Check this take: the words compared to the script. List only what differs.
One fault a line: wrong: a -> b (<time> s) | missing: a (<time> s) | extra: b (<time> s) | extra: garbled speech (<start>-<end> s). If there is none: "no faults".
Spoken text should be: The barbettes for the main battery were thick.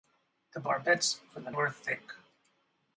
missing: main battery (1.5 s)